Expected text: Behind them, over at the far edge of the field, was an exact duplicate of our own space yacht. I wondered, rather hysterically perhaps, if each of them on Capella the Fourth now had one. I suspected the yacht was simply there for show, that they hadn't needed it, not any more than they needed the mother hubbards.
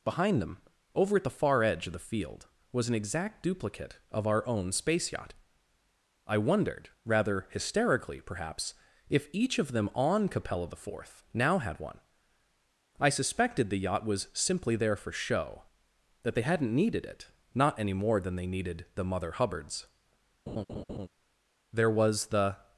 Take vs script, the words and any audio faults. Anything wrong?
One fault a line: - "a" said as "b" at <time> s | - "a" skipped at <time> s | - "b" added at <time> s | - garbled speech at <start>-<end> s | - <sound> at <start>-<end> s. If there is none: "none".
- laugh at 20.5-21.1 s
- "There was the" added at 21.7 s